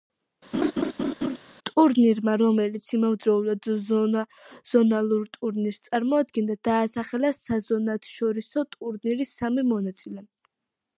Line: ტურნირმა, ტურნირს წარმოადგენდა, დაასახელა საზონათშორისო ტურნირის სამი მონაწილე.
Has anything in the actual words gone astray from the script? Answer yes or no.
yes